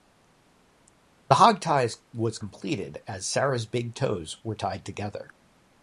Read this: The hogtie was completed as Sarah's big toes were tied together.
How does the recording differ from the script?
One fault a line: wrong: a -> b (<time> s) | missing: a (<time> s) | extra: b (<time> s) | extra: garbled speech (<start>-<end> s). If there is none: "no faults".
no faults